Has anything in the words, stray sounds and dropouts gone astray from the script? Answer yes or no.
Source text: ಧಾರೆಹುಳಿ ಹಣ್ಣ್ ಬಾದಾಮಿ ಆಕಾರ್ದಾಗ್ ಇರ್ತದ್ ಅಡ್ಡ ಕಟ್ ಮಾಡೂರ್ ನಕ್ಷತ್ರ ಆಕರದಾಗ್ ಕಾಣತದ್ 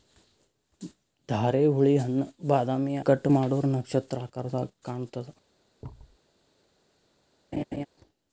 yes